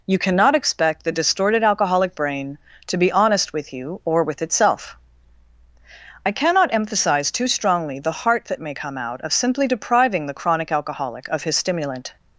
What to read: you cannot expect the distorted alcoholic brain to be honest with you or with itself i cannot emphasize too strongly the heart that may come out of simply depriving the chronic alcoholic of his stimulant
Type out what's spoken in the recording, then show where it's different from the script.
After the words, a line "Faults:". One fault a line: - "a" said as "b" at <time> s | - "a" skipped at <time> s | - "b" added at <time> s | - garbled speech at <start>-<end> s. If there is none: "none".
you cannot expect the distorted alcoholic brain to be honest with you or with itself i cannot emphasize too strongly the heart that may come out of simply depriving the chronic alcoholic of his stimulant
Faults:
none